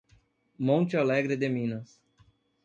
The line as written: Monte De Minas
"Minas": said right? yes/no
yes